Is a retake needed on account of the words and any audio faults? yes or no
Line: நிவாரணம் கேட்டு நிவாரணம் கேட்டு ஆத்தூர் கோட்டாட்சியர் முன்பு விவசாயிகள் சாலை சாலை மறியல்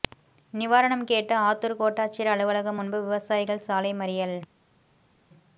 yes